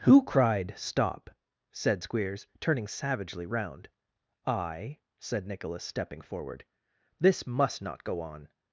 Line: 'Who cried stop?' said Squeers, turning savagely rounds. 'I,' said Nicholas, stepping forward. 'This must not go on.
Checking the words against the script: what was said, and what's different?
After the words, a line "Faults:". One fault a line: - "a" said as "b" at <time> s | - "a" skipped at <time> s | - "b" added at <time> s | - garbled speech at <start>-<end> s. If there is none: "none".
'Who cried stop?' said Squeers, turning savagely round. 'I,' said Nicholas, stepping forward. 'This must not go on.
Faults:
- "rounds" said as "round" at 3.4 s